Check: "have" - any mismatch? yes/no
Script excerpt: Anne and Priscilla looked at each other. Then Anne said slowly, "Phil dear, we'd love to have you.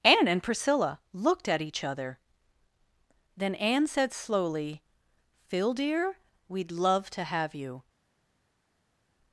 no